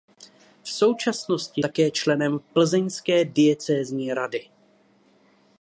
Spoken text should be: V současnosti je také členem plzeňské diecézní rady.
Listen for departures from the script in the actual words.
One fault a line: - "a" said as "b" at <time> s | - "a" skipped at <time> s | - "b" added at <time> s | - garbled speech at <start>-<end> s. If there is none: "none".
- "je" skipped at 1.6 s